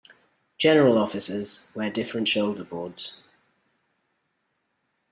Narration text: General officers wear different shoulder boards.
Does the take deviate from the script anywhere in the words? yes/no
no